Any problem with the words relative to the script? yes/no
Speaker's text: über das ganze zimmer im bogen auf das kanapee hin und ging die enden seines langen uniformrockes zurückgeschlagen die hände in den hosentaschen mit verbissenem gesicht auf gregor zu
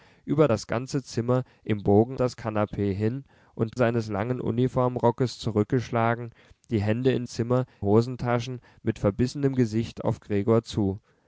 yes